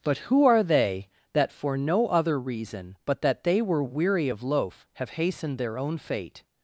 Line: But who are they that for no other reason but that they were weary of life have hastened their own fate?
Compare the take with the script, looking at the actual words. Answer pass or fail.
fail